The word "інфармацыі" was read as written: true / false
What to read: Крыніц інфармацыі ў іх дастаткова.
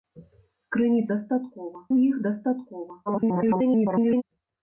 false